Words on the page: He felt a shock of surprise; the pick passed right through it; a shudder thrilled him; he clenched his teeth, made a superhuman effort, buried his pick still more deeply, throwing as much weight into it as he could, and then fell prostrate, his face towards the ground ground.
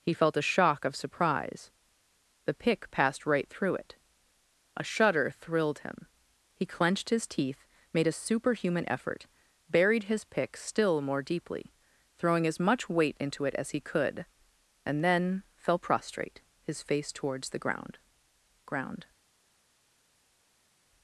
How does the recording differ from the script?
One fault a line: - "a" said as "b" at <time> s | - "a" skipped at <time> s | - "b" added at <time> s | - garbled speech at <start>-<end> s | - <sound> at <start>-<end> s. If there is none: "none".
none